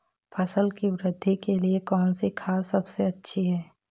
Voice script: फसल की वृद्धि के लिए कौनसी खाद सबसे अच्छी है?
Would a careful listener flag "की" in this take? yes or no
no